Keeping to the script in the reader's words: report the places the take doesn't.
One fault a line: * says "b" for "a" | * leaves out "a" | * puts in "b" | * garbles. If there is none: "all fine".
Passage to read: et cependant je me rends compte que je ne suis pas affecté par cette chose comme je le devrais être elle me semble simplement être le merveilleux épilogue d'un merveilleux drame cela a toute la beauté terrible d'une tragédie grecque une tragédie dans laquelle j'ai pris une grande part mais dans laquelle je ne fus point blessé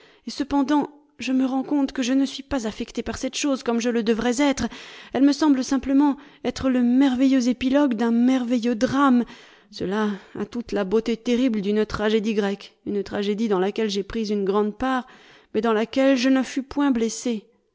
all fine